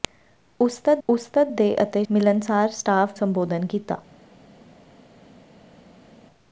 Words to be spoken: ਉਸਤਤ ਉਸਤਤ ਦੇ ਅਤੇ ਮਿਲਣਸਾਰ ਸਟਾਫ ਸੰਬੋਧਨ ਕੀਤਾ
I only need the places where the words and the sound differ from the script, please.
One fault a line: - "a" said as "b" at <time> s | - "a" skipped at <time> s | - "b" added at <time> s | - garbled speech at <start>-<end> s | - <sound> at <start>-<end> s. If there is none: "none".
none